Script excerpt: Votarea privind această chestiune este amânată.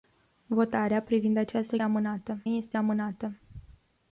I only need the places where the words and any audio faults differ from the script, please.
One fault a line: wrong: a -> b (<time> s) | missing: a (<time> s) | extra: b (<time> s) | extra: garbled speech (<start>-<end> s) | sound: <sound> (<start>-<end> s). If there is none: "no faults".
wrong: chestiune -> amânată (1.8 s)